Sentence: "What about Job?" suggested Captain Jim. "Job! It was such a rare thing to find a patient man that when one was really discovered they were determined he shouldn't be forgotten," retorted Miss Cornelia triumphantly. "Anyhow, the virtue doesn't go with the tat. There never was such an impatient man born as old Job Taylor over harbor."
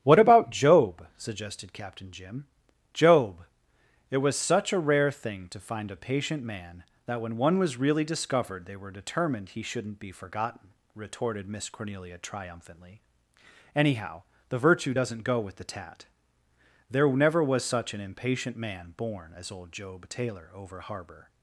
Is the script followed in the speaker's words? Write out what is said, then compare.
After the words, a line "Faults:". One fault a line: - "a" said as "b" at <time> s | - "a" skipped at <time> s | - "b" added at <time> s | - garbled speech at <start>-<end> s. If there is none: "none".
"What about Job?" suggested Captain Jim. "Job! It was such a rare thing to find a patient man that when one was really discovered they were determined he shouldn't be forgotten," retorted Miss Cornelia triumphantly. "Anyhow, the virtue doesn't go with the tat. There never was such an impatient man born as old Job Taylor over harbor."
Faults:
none